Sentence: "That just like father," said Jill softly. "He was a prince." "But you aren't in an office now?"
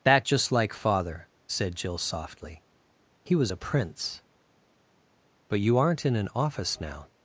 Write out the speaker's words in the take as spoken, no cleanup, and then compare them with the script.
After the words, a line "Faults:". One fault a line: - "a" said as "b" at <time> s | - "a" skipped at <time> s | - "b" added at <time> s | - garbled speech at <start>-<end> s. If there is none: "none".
"That just like father," said Jill softly. "He was a prince." "But you aren't in an office now?"
Faults:
none